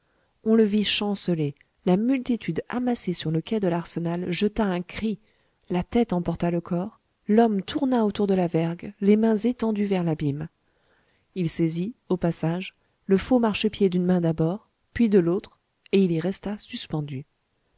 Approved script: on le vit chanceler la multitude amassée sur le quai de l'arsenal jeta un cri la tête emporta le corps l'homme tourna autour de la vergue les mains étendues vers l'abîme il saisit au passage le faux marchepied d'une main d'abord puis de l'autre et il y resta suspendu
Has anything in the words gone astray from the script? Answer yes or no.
no